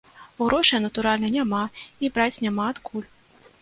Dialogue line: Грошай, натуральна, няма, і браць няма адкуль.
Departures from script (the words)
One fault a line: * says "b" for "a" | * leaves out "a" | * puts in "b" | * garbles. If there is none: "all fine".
all fine